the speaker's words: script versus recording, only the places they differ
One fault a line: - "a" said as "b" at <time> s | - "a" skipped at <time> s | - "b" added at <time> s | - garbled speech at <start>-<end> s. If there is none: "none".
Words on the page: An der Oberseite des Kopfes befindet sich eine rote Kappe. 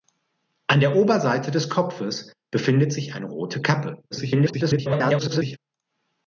- garbled speech at 4.1-5.6 s